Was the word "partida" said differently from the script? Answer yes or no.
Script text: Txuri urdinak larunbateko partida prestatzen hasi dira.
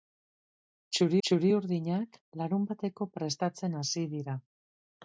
yes